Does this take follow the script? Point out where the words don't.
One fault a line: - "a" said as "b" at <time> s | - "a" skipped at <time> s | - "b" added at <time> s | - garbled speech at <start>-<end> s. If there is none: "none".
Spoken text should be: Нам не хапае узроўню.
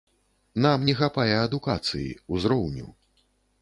- "адукацыі" added at 1.4 s